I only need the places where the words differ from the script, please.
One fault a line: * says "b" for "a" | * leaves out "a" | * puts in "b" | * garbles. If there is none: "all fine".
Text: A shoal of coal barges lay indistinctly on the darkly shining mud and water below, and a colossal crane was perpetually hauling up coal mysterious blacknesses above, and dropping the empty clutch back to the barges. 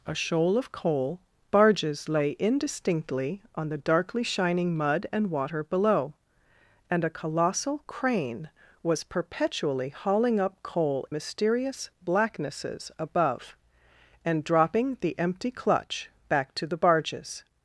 all fine